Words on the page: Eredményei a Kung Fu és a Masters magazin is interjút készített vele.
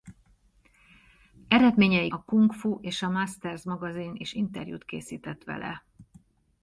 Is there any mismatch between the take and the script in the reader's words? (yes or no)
no